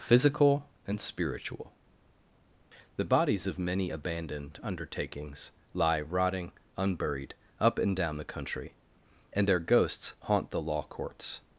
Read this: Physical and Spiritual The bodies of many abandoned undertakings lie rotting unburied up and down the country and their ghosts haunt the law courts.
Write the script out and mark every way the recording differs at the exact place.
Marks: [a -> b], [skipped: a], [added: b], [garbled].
Physical and Spiritual The bodies of many abandoned undertakings lie rotting unburied up and down the country and their ghosts haunt the law courts.